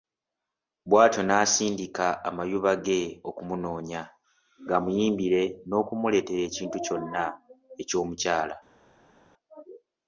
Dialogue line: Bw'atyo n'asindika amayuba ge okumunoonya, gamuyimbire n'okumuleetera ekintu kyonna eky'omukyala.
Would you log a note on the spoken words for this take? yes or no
no